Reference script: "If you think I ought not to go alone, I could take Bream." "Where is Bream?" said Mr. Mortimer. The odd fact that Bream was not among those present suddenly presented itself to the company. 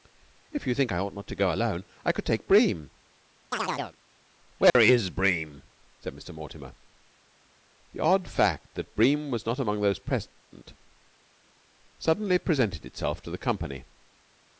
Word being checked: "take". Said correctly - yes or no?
yes